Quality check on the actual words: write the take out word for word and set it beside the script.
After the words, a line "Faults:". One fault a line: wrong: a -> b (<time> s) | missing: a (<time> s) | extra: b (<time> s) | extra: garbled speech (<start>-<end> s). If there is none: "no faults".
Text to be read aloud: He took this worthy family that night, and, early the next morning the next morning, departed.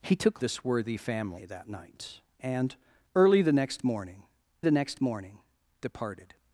He took this worthy family that night, and, early the next morning the next morning, departed.
Faults:
no faults